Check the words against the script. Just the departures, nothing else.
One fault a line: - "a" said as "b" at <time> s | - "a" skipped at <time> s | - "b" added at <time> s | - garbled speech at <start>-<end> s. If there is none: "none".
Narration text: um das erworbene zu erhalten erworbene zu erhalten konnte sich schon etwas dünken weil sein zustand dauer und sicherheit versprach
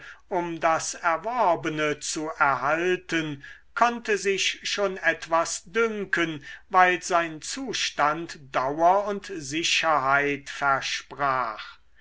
- "erworbene zu erhalten" skipped at 3.4 s